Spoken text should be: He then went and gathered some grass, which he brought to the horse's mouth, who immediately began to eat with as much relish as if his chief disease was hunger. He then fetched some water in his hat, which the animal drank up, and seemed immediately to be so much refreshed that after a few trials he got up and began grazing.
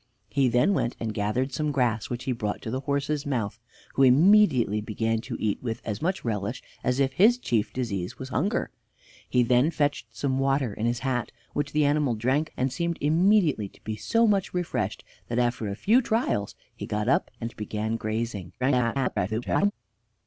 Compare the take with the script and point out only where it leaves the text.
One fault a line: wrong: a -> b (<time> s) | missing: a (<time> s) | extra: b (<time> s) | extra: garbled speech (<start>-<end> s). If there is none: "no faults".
missing: up (12.5 s)
extra: garbled speech (18.6-19.7 s)